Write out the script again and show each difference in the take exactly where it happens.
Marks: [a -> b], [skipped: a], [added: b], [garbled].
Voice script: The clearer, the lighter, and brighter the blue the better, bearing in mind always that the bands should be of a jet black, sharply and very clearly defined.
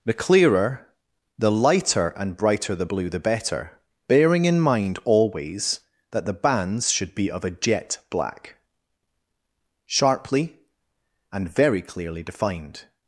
The clearer, the lighter, and brighter the blue the better, bearing in mind always that the bands should be of a jet black, sharply and very clearly defined.